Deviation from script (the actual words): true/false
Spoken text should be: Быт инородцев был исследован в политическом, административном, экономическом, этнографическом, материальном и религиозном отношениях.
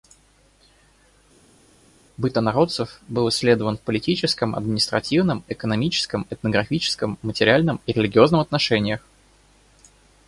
false